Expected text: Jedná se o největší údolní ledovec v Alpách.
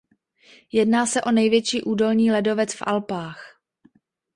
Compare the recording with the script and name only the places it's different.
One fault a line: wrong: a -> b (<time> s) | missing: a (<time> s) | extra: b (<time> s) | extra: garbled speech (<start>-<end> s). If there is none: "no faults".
no faults